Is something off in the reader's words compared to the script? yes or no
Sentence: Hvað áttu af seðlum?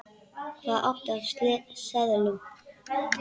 no